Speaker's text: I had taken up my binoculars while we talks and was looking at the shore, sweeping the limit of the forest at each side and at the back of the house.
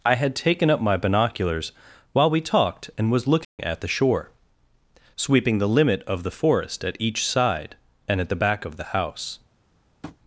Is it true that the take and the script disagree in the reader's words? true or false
true